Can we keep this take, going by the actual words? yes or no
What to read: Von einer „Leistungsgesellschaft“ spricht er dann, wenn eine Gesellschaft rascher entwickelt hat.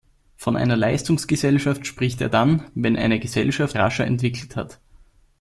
yes